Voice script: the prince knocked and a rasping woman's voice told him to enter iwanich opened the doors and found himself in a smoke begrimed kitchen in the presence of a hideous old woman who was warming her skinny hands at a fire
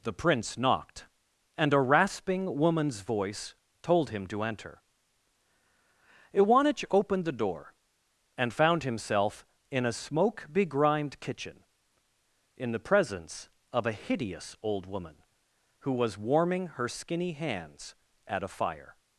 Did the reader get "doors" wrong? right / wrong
wrong